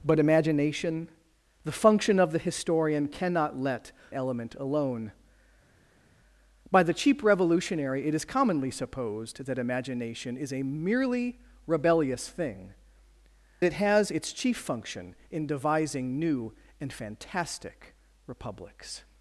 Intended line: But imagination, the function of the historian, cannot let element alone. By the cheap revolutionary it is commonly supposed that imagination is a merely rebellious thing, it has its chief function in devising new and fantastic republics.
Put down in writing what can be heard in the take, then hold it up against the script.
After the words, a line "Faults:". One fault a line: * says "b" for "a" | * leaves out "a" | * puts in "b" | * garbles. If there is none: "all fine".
But imagination, the function of the historian, cannot let element alone. By the cheap revolutionary it is commonly supposed that imagination is a merely rebellious thing, it has its chief function in devising new and fantastic republics.
Faults:
all fine